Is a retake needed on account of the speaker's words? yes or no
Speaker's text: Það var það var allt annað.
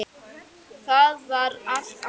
yes